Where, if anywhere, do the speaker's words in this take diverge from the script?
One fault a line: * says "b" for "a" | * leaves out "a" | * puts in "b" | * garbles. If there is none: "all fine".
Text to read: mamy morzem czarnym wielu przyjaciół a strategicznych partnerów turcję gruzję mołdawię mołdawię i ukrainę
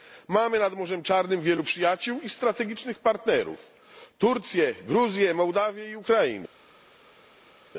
* puts in "nad"
* says "i" for "a"
* leaves out "mołdawię"